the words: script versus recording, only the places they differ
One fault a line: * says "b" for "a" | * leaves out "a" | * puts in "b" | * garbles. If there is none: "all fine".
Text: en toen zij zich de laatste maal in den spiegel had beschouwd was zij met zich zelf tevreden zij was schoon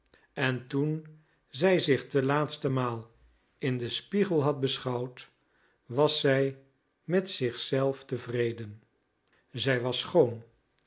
all fine